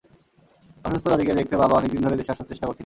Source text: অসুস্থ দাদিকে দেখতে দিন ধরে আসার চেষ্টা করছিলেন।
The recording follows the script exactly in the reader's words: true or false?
false